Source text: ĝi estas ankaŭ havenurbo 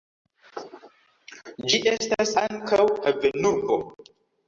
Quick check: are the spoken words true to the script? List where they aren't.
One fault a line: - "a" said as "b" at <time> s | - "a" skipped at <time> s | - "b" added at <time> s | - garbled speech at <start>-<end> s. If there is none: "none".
none